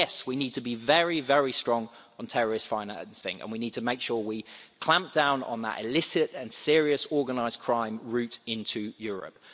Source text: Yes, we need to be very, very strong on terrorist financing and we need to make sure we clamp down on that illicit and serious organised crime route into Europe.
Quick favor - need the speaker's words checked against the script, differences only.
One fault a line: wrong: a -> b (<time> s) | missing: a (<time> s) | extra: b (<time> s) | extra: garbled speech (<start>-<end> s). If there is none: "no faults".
no faults